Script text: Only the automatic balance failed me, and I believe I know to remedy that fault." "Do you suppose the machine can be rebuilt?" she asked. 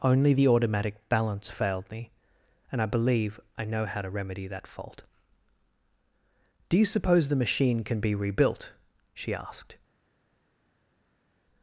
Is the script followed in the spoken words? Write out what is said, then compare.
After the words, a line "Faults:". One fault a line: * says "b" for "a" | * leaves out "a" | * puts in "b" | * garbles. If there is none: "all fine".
Only the automatic balance failed me, and I believe I know how to remedy that fault." "Do you suppose the machine can be rebuilt?" she asked.
Faults:
* puts in "how"